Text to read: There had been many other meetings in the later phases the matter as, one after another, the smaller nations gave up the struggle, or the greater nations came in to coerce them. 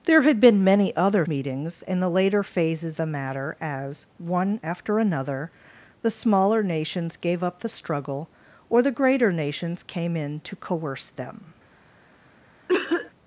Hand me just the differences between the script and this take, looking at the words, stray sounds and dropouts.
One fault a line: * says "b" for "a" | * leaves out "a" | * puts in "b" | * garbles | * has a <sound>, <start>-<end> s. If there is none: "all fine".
* has a cough, 12.7-13.1 s